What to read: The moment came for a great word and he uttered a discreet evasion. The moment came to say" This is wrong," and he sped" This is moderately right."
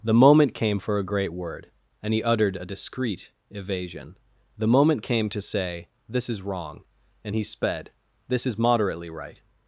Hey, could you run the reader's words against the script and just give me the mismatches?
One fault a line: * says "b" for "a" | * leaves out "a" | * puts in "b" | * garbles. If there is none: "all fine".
all fine